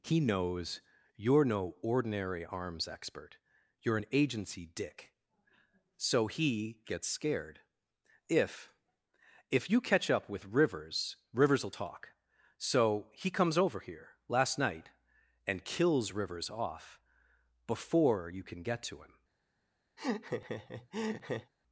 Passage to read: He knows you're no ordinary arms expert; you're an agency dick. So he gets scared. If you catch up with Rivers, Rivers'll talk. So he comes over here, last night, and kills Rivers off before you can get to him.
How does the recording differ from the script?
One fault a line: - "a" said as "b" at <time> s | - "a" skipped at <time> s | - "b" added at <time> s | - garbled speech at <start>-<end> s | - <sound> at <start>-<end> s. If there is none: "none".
- "If" added at 9.5 s
- laugh at 20.0-21.5 s